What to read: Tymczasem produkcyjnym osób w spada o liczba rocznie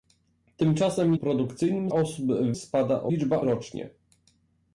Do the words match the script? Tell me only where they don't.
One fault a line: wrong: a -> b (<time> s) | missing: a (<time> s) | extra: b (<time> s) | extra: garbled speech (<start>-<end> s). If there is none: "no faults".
no faults